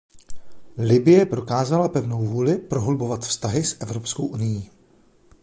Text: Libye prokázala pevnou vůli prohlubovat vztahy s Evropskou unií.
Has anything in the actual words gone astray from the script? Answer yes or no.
no